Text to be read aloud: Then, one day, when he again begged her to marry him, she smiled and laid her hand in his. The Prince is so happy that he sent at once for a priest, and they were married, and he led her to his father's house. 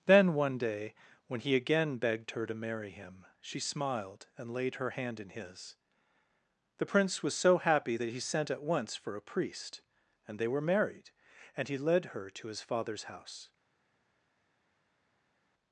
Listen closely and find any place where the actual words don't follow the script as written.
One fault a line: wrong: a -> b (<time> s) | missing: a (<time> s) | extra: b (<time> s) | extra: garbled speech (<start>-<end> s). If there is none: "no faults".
wrong: is -> was (7.2 s)